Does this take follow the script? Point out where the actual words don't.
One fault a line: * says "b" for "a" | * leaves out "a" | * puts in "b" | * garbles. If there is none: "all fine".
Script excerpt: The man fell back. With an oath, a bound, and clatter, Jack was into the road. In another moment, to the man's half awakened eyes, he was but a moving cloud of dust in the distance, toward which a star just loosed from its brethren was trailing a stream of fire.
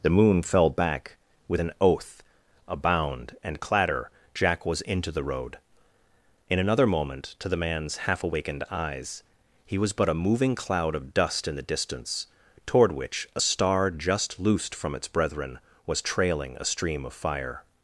* says "moon" for "man"